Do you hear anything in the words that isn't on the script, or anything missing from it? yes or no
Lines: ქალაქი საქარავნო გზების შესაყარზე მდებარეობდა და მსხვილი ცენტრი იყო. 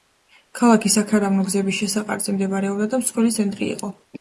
no